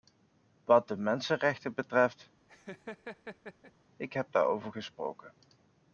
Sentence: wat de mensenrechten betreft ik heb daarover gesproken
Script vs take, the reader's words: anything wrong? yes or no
no